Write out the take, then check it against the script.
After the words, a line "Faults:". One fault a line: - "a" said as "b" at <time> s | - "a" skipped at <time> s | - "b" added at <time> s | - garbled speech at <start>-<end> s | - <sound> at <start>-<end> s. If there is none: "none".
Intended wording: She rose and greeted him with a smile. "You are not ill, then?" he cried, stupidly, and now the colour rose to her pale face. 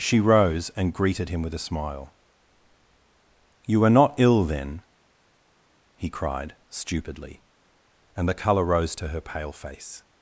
She rose and greeted him with a smile. "You are not ill, then?" he cried, stupidly, and the colour rose to her pale face.
Faults:
- "now" skipped at 8.3 s